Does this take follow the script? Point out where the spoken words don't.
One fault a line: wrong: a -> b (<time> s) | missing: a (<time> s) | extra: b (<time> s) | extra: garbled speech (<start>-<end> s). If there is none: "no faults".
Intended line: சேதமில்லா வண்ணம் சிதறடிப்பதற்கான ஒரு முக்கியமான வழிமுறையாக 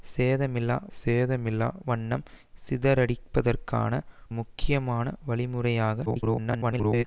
extra: சேதமில்லா (0.9 s)
missing: ஒரு (3.9 s)
extra: garbled speech (6.1-7.0 s)